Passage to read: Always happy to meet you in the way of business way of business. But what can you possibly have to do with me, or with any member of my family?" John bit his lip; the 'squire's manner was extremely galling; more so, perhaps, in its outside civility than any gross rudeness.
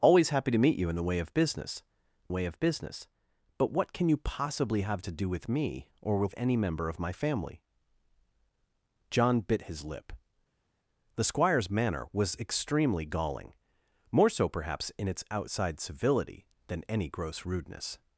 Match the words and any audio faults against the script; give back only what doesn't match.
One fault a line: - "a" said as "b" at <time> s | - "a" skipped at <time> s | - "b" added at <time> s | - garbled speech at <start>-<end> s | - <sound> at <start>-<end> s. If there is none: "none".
none